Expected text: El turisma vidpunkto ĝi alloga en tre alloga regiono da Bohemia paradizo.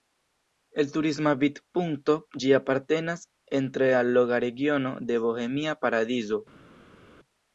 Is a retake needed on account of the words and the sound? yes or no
yes